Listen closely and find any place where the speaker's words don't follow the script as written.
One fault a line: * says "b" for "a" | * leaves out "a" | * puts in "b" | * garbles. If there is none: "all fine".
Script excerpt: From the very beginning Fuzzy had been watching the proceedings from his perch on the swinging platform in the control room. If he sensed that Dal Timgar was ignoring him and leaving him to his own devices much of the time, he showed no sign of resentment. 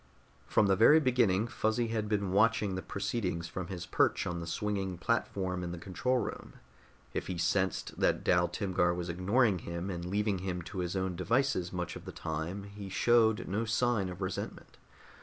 all fine